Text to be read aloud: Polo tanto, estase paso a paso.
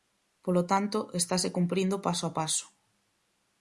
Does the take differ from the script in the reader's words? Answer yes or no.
yes